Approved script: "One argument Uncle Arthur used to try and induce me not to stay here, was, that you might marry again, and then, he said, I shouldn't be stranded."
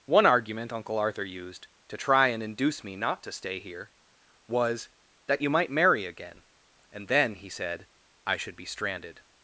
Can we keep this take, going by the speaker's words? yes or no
no